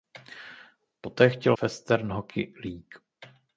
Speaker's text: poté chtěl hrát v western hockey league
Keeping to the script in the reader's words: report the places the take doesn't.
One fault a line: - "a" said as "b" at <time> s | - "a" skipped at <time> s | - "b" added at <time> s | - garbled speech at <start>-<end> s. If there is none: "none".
- "hrát v" skipped at 1.6 s